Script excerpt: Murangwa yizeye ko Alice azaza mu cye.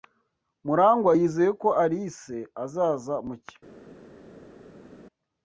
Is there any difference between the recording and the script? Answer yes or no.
no